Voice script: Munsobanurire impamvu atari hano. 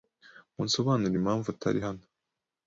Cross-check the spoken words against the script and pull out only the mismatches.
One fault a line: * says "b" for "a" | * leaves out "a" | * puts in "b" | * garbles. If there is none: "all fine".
all fine